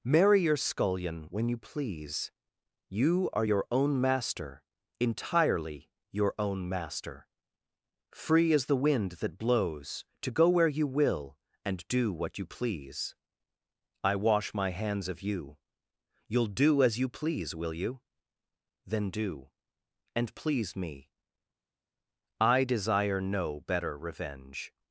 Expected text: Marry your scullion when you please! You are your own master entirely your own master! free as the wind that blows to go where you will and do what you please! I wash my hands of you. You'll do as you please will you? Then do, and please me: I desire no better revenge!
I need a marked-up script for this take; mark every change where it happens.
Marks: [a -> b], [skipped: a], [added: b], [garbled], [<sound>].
Marry your scullion when you please! You are your own master entirely your own master! free as the wind that blows to go where you will and do what you please! I wash my hands of you. You'll do as you please will you? Then do, and please me: I desire no better revenge!